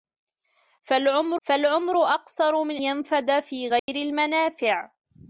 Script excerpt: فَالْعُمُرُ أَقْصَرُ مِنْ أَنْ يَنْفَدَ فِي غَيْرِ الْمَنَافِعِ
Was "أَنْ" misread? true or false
true